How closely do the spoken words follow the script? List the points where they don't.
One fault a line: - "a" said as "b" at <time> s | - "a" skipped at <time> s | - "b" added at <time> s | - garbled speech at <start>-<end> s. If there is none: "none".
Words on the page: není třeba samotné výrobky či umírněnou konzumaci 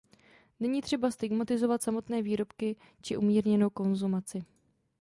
- "stigmatizovat" added at 1.1 s